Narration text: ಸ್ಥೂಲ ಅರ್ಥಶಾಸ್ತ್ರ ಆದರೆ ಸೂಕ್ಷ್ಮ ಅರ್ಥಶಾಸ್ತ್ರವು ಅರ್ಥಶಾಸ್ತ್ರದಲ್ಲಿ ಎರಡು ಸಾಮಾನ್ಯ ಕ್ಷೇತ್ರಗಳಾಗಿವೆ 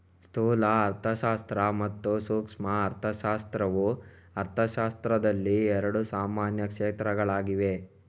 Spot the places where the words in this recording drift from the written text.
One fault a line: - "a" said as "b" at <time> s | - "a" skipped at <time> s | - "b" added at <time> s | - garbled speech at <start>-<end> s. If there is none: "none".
- "ಆದರೆ" said as "ಮತ್ತು" at 1.8 s